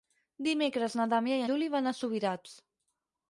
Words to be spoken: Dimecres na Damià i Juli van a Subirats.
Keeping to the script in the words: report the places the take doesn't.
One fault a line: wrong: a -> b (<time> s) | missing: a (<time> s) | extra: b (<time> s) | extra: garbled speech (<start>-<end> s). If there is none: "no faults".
no faults